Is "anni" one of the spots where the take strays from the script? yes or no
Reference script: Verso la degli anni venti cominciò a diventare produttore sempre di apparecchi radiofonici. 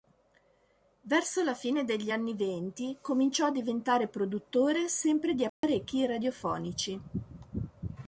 no